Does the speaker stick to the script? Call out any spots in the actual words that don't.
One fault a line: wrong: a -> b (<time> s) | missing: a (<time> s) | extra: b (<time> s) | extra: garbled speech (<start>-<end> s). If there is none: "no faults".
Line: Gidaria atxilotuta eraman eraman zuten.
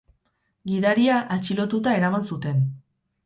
missing: eraman (2.2 s)